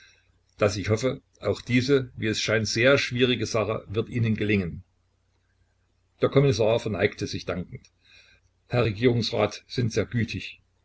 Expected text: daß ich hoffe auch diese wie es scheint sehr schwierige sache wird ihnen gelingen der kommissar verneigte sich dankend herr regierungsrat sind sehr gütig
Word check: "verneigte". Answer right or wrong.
right